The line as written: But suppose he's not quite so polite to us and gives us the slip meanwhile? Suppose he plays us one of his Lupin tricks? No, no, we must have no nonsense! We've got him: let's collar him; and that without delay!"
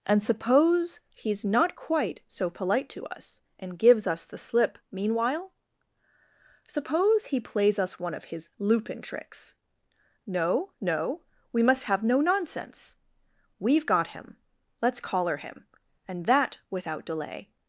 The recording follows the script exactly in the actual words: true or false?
false